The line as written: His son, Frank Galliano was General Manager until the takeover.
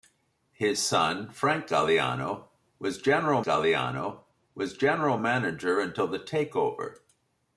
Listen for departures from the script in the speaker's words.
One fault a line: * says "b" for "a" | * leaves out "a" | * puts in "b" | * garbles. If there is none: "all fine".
* puts in "Galliano was General"